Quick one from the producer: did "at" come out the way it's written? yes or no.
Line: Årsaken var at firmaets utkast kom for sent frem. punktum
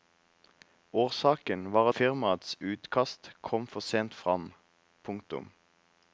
no